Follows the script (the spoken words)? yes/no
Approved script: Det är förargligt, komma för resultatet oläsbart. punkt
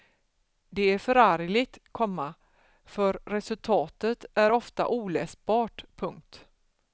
no